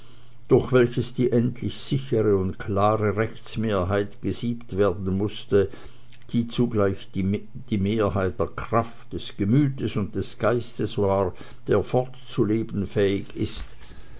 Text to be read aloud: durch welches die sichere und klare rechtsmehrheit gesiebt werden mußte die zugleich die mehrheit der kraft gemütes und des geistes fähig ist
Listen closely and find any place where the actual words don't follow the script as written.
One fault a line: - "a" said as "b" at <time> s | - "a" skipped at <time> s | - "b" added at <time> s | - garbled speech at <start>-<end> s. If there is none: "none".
- "endlich" added at 1.3 s
- "des" added at 9.1 s
- "war der fortzuleben" added at 11.0 s